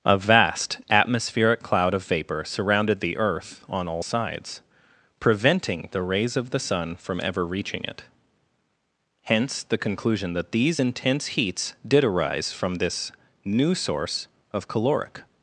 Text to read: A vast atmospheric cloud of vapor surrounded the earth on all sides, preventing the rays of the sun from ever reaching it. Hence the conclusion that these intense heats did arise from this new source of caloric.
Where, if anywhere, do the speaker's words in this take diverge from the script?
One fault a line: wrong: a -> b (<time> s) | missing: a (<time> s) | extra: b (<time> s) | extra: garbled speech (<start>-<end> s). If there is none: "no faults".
no faults